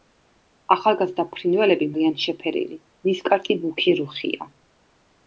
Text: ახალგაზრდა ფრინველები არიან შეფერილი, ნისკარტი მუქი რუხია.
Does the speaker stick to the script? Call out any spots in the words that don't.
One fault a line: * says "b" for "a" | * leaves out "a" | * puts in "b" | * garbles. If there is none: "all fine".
all fine